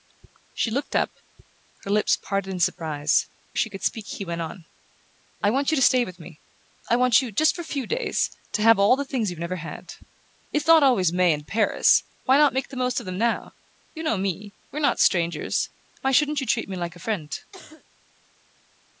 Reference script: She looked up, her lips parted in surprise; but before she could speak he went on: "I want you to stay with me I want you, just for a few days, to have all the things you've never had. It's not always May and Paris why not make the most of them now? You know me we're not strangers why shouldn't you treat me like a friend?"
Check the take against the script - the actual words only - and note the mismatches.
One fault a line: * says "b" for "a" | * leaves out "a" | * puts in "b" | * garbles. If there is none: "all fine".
* leaves out "but before"